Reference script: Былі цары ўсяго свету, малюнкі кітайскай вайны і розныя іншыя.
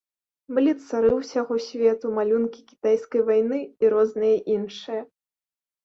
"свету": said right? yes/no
yes